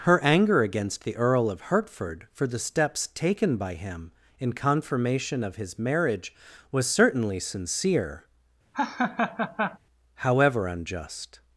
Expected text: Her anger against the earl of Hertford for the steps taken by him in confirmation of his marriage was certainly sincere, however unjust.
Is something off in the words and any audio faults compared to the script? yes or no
yes